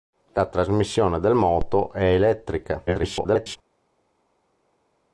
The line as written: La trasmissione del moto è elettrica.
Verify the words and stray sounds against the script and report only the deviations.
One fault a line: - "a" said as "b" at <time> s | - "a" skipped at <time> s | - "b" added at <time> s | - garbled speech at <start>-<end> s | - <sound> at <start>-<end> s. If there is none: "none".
- garbled speech at 2.9-3.6 s